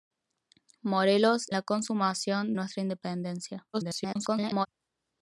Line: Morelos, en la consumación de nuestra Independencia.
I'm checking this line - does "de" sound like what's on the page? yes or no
no